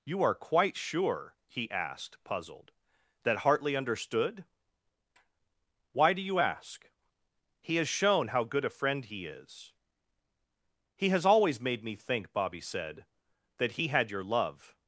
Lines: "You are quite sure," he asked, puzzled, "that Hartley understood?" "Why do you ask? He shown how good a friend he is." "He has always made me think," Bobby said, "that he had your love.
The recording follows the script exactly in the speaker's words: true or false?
false